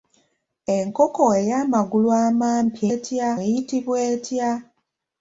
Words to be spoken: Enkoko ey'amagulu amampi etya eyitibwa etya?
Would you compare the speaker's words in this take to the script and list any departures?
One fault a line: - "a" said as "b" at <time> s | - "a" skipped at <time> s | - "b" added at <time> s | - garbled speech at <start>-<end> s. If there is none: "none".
none